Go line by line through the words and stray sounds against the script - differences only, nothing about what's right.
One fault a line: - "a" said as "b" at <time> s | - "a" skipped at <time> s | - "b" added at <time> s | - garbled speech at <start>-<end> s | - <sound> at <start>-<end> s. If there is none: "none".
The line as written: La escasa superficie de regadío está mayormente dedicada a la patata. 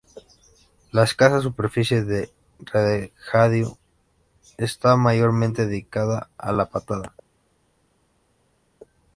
none